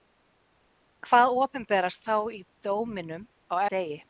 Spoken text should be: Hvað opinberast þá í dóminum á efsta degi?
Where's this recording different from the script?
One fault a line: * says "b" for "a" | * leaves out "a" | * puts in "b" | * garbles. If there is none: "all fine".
* leaves out "efsta"